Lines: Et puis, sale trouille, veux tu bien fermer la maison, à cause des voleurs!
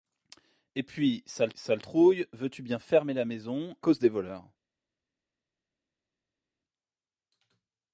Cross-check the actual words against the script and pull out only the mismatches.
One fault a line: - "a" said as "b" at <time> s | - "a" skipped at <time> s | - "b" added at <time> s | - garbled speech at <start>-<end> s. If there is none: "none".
- "sale" added at 1.6 s
- "à" skipped at 3.8 s